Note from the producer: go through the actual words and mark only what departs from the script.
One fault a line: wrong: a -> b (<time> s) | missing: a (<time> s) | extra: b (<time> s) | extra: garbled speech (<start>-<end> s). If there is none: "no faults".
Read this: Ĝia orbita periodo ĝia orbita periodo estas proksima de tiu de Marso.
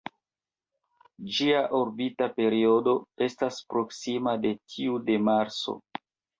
missing: ĝia orbita periodo (3.0 s)